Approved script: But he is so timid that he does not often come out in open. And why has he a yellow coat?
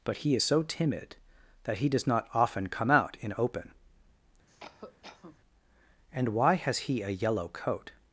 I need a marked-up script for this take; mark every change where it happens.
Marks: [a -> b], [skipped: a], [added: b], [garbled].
But he is so timid that he does not often come out in open. And why has he a yellow coat?